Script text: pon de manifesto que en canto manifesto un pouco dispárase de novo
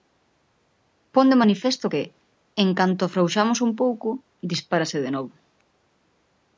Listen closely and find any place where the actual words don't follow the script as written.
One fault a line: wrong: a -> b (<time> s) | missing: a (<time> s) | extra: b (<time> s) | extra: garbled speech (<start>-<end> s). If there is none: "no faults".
wrong: manifesto -> afrouxamos (3.0 s)